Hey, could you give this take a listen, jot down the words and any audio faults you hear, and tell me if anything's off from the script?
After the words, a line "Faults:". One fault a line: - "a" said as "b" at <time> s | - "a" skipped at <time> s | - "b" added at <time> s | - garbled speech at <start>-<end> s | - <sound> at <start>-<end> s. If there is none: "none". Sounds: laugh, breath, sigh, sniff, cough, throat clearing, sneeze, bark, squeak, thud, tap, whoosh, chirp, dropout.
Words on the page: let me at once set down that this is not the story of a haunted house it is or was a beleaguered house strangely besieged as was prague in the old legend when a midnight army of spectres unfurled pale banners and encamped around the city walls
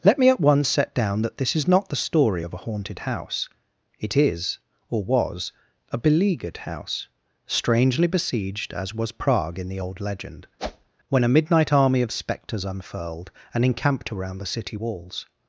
let me at once set down that this is not the story of a haunted house it is or was a beleaguered house strangely besieged as was prague in the old legend when a midnight army of spectres unfurled and encamped around the city walls
Faults:
- whoosh at 10.6-10.9 s
- "pale banners" skipped at 13.3 s